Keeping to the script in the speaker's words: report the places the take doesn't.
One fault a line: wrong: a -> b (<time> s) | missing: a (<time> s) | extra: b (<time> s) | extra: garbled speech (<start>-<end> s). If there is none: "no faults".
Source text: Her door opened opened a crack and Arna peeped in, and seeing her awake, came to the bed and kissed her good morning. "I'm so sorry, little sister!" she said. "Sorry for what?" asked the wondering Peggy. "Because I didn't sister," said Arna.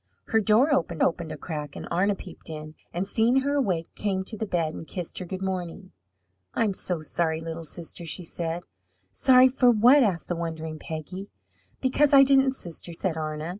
no faults